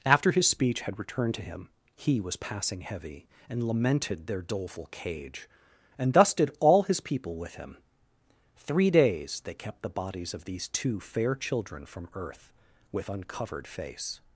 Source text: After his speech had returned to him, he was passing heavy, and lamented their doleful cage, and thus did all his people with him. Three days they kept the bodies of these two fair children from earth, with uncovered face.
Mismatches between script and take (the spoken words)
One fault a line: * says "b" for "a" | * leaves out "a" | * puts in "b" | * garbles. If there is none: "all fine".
all fine